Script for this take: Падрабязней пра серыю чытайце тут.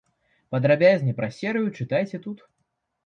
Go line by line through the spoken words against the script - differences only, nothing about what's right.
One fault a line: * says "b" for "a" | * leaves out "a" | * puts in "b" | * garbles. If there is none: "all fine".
all fine